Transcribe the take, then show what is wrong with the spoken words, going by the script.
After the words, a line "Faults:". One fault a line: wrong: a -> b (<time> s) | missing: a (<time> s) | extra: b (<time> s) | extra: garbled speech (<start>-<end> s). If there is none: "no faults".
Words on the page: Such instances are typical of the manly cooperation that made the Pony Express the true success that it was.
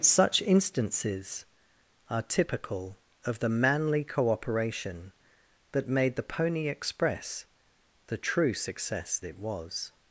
Such instances are typical of the manly cooperation that made the Pony Express the true success it was.
Faults:
missing: that (9.2 s)